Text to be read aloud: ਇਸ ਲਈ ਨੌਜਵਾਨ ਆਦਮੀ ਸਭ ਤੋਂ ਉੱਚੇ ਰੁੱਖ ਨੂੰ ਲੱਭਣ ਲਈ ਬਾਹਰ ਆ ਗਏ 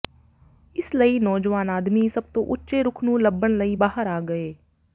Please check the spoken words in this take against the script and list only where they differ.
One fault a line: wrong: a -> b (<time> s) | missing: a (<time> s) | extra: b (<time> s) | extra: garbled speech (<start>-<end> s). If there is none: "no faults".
no faults